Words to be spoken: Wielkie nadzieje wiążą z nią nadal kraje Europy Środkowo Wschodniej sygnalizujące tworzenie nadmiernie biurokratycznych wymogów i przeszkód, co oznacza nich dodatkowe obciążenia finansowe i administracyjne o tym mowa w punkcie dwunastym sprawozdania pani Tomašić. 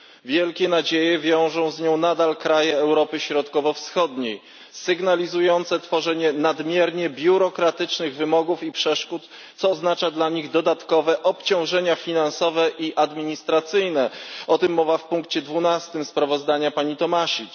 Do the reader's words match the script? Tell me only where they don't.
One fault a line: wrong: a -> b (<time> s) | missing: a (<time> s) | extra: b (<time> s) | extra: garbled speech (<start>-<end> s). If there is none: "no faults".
extra: dla (10.1 s)